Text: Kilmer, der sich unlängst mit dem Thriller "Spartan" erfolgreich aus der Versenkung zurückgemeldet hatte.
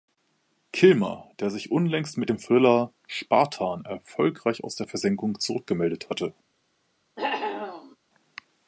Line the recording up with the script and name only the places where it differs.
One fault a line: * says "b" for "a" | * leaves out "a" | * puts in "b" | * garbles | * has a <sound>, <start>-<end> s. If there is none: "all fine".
* has a cough, 7.2-8.0 s